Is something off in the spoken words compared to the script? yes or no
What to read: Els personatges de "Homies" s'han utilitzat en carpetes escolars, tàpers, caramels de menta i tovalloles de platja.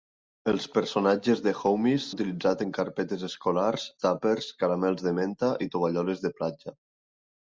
yes